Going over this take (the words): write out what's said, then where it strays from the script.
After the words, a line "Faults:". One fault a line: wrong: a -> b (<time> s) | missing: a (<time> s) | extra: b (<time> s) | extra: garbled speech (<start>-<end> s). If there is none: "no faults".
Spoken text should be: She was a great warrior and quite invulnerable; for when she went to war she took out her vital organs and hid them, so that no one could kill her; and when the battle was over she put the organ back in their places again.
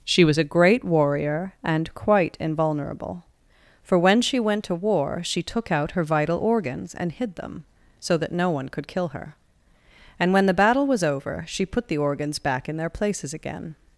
She was a great warrior and quite invulnerable; for when she went to war she took out her vital organs and hid them, so that no one could kill her; and when the battle was over she put the organs back in their places again.
Faults:
wrong: organ -> organs (12.0 s)